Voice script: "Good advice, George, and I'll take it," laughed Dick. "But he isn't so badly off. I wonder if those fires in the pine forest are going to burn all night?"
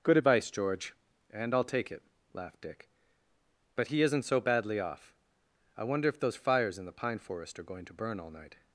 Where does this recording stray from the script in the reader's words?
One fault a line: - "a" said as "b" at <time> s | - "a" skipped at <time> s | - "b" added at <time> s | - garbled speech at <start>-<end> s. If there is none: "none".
none